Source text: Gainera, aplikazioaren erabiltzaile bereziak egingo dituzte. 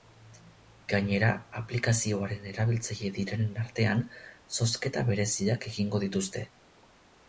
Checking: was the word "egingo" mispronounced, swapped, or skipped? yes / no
no